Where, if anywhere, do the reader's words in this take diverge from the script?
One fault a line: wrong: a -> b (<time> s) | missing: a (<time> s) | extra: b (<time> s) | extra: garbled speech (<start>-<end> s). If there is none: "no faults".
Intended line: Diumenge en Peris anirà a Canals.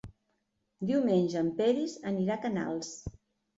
no faults